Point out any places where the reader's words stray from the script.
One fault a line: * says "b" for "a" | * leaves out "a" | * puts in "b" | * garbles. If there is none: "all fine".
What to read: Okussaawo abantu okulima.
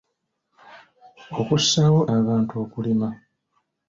all fine